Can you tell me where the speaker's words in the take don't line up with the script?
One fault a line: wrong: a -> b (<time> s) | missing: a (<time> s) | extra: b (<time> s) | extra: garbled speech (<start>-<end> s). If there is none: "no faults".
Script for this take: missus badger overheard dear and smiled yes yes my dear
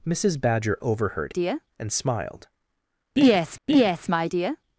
no faults